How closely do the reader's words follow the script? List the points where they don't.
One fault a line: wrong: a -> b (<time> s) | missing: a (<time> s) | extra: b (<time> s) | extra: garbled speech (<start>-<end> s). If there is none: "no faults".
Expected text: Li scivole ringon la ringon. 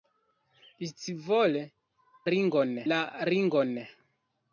no faults